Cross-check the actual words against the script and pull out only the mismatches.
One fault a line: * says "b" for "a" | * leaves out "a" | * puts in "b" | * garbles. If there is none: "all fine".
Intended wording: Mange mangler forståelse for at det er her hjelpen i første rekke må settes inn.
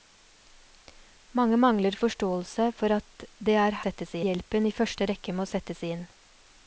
* says "settes" for "her"